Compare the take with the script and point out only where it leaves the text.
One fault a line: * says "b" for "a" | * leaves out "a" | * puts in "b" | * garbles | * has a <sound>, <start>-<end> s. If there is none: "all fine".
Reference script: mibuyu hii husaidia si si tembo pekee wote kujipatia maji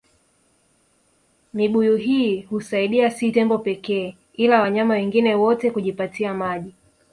* leaves out "si"
* puts in "ila wanyama wengine"